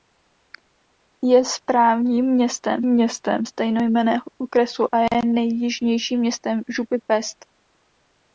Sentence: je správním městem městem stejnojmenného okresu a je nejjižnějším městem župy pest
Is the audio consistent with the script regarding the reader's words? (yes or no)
yes